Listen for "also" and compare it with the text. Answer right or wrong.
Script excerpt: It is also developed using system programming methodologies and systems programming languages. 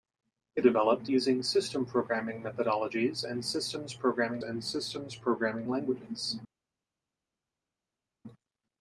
wrong